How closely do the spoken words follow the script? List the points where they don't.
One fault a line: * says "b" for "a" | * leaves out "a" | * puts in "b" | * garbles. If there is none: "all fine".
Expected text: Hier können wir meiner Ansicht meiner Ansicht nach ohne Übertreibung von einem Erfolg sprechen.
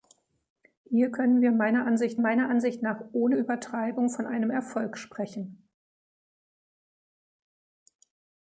all fine